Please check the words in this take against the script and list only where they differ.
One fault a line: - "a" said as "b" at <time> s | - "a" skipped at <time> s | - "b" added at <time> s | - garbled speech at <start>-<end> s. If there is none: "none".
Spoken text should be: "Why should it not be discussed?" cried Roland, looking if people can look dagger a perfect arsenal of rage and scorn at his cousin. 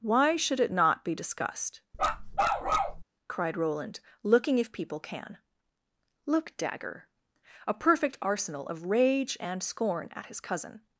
none